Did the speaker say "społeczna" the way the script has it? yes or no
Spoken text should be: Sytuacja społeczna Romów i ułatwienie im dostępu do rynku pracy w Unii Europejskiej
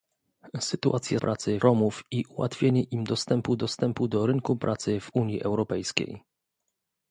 no